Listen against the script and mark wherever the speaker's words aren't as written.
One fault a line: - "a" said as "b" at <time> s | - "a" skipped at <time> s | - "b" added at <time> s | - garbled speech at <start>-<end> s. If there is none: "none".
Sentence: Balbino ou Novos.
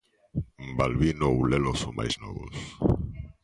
- "Lelo son máis" added at 1.5 s